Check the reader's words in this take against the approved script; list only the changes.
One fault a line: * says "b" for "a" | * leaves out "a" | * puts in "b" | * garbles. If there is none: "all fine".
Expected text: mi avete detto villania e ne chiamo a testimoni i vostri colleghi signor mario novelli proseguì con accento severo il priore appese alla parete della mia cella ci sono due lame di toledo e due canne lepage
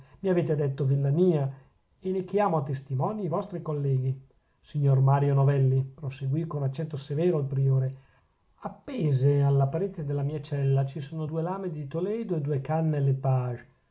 all fine